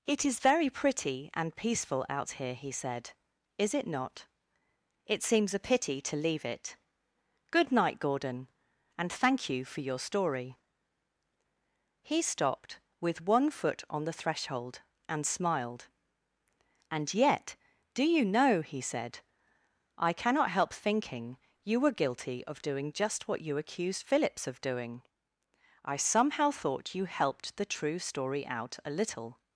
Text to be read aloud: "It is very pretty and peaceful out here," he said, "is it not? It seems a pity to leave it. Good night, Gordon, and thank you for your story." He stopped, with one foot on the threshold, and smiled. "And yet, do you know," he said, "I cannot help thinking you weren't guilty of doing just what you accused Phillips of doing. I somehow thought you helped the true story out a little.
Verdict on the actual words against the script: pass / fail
fail